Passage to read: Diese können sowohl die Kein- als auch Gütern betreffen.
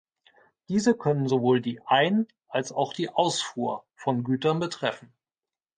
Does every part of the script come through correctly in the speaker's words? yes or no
no